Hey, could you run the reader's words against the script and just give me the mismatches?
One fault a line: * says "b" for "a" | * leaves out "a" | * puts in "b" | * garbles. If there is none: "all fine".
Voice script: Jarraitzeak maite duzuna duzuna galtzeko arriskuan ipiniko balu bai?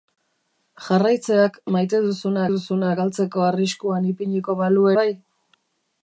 all fine